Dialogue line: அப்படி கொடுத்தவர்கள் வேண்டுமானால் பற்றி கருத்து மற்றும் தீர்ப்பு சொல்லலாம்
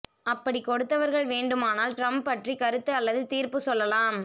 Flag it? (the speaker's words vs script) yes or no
yes